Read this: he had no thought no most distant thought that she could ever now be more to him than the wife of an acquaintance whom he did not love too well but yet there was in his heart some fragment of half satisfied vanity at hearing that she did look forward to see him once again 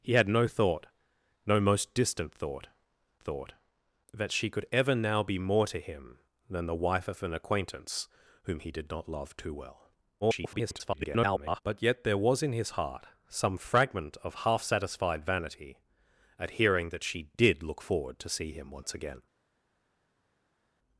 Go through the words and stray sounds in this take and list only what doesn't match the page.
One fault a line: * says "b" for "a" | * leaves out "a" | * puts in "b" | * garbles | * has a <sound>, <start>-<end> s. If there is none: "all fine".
* puts in "thought"
* garbles